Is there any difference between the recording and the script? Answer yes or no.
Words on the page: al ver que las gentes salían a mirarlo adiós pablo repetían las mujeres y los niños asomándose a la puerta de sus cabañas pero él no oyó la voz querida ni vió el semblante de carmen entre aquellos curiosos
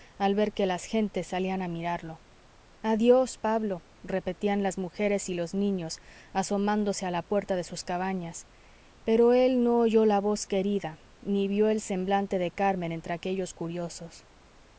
no